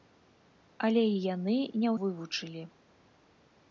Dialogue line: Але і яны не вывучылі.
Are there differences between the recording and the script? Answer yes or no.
no